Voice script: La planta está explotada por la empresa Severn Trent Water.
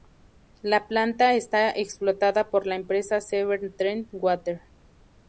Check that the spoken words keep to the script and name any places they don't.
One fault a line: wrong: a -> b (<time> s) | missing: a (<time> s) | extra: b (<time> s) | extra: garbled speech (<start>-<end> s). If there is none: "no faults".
no faults